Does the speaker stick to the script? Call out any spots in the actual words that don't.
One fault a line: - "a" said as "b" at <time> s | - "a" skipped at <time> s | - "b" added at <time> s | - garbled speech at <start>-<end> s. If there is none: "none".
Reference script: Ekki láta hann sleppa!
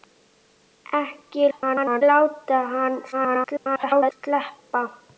- garbled speech at 1.5-2.0 s
- garbled speech at 3.1-4.1 s